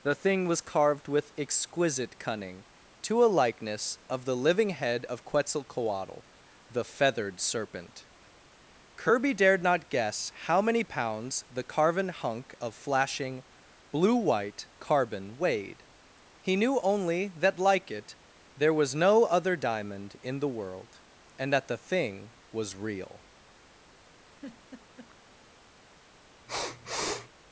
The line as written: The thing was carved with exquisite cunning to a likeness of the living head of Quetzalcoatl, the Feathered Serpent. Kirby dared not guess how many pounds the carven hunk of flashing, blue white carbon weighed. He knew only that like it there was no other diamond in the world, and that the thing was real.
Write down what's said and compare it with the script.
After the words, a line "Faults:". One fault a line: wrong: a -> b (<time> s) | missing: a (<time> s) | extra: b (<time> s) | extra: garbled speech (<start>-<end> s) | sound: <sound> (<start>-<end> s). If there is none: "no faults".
The thing was carved with exquisite cunning to a likeness of the living head of Quetzalcoatl, the Feathered Serpent. Kirby dared not guess how many pounds the carven hunk of flashing, blue white carbon weighed. He knew only that like it there was no other diamond in the world, and that the thing was real.
Faults:
sound: laugh (24.3-25.2 s)
sound: sniff (26.5-27.3 s)